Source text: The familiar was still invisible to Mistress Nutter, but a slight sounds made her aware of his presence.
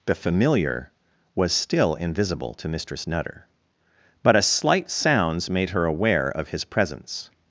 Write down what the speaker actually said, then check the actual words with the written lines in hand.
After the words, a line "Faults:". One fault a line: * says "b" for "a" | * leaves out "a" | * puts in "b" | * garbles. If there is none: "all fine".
The familiar was still invisible to Mistress Nutter, but a slight sounds made her aware of his presence.
Faults:
all fine